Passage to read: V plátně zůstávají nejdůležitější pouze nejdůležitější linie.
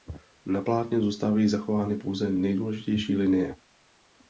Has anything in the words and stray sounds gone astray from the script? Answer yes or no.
yes